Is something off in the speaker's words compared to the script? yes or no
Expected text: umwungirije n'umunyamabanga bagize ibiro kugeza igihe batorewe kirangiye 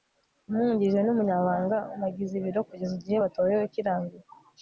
no